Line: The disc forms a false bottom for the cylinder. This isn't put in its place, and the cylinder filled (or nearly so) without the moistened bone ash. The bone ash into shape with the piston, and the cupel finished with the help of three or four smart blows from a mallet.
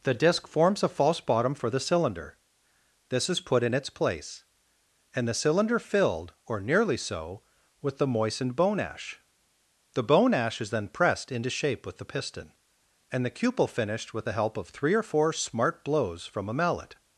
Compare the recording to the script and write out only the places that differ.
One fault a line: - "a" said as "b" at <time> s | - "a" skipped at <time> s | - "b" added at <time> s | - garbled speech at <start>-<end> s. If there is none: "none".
- "isn't" said as "is" at 3.3 s
- "without" said as "with" at 7.8 s
- "is then pressed" added at 10.6 s